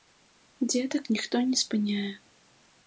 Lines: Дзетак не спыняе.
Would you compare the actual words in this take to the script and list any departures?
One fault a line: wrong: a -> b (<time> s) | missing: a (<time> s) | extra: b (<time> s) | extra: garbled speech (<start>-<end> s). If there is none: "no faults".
extra: ніхто (1.2 s)